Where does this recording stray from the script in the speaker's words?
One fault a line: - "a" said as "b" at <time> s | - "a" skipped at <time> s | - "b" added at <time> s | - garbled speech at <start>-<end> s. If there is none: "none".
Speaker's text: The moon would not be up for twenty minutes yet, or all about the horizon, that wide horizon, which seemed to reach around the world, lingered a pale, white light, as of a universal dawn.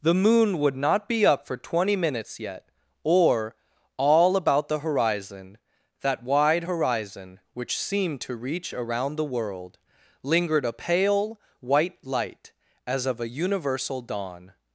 none